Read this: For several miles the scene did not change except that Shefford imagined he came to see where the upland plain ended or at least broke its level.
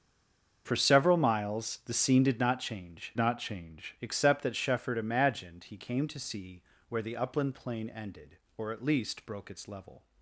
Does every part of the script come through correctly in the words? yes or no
no